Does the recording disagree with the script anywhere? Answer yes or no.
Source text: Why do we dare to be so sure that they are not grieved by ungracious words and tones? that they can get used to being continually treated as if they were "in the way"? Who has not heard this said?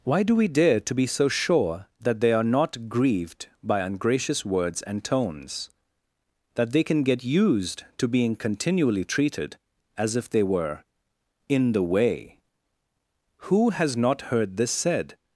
no